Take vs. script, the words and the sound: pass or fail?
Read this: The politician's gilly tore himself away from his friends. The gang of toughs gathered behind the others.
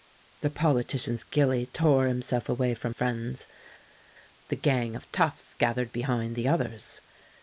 fail